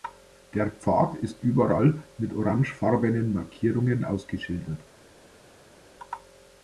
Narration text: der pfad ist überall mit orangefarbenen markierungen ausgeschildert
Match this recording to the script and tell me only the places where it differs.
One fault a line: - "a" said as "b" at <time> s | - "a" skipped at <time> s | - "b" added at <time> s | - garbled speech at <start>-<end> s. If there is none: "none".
none